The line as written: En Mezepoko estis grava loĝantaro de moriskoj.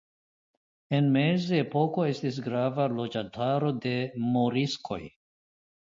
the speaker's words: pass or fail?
pass